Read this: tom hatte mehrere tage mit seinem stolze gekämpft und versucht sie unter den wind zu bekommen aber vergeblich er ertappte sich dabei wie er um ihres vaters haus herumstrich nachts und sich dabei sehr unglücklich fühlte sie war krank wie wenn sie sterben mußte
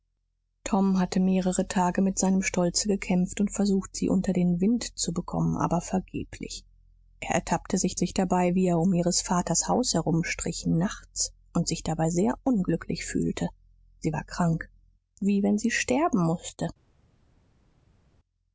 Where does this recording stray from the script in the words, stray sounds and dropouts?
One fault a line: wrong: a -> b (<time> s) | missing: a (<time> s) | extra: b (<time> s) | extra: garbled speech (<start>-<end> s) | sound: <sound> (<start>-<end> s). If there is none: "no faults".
extra: sich (7.9 s)